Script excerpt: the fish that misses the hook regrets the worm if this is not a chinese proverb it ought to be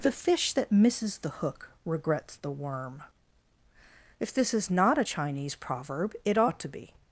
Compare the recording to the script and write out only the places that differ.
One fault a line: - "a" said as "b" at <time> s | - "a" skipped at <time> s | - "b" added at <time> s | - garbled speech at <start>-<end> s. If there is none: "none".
none